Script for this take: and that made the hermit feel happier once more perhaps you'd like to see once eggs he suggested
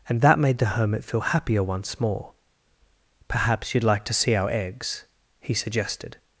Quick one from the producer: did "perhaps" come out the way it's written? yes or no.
yes